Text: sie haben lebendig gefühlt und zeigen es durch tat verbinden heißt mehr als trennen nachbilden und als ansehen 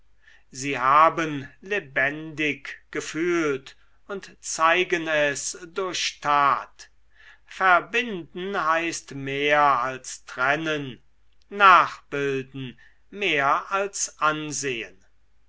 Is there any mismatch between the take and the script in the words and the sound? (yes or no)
yes